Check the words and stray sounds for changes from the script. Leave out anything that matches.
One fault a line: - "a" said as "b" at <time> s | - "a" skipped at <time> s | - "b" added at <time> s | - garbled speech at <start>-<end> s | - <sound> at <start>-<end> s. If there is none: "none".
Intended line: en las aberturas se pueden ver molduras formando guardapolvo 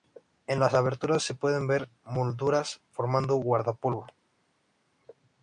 none